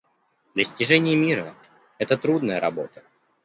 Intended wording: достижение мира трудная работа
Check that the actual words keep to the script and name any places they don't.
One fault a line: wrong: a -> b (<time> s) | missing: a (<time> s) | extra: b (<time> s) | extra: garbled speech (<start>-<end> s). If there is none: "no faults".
extra: это (2.0 s)